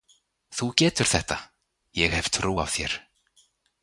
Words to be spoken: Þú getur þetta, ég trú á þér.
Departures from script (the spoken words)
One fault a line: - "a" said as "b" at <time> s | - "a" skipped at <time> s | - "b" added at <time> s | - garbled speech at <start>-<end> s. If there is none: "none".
- "hef" added at 2.1 s